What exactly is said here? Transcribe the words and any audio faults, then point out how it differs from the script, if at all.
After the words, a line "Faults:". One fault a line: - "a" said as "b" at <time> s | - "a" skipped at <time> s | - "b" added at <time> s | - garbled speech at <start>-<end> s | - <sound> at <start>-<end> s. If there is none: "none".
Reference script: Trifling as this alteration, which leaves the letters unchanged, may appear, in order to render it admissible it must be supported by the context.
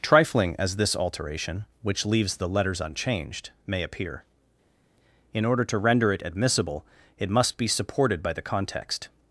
Trifling as this alteration, which leaves the letters unchanged, may appear, in order to render it admissible it must be supported by the context.
Faults:
none